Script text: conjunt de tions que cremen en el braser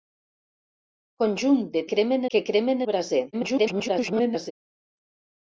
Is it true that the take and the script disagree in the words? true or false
true